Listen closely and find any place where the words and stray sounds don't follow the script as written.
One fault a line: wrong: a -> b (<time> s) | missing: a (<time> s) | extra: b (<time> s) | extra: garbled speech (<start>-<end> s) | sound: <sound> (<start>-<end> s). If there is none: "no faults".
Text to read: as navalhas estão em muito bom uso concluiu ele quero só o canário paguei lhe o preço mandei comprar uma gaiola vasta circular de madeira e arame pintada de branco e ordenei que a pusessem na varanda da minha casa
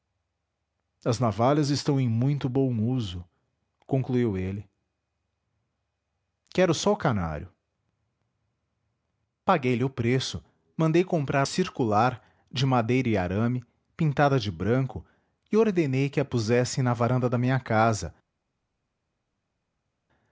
missing: uma gaiola vasta (11.5 s)